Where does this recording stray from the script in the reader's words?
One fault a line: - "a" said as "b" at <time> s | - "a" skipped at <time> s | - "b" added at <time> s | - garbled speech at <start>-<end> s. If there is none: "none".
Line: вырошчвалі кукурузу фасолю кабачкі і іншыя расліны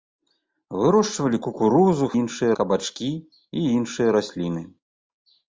- "фасолю" said as "іншыя" at 2.2 s